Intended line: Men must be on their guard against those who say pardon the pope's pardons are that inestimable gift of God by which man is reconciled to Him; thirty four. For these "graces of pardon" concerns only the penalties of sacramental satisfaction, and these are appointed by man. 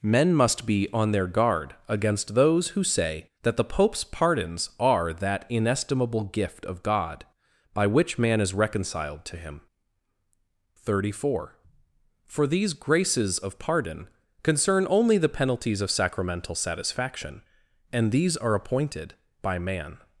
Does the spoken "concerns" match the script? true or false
false